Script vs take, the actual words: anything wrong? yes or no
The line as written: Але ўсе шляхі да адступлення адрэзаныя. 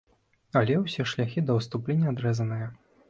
no